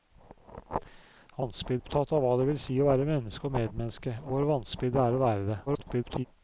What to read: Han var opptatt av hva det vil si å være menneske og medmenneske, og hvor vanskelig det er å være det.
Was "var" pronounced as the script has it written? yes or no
no